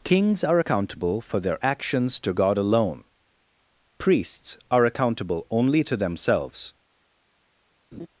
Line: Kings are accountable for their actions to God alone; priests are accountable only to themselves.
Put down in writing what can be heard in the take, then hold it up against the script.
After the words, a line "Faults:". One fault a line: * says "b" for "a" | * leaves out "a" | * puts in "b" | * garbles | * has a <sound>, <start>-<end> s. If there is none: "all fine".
Kings are accountable for their actions to God alone; priests are accountable only to themselves.
Faults:
* has a laugh, 7.9-8.1 s